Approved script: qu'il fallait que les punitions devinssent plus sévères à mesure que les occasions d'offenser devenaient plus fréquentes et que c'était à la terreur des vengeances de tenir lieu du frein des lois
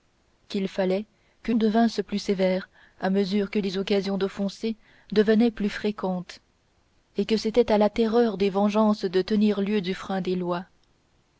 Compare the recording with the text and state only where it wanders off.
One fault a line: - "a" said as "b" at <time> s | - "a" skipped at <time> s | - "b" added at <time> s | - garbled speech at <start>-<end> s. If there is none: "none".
- "les punitions" skipped at 1.5 s